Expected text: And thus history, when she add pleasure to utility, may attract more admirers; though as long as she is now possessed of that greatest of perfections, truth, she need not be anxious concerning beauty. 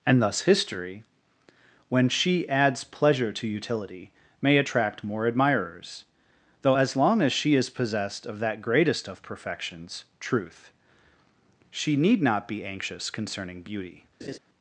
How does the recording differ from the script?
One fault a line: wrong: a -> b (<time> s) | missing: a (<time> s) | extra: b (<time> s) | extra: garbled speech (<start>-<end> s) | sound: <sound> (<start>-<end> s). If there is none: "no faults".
wrong: add -> adds (2.5 s)
missing: now (7.7 s)
sound: laugh (14.2-14.4 s)